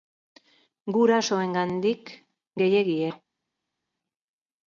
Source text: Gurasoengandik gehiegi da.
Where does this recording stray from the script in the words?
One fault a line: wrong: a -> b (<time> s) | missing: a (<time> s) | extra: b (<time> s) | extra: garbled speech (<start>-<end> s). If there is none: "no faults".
no faults